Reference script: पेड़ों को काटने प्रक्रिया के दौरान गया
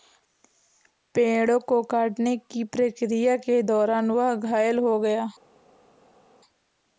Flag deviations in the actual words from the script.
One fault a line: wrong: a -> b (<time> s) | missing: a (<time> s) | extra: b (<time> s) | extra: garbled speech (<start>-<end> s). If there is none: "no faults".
extra: की (2.5 s)
extra: वह घायल हो (4.1 s)